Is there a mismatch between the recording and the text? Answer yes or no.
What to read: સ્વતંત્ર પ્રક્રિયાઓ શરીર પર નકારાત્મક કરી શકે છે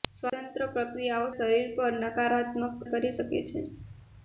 no